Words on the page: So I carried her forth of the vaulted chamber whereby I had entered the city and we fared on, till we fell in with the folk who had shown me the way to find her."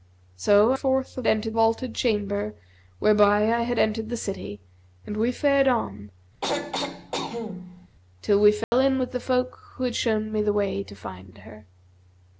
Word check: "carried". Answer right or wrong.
wrong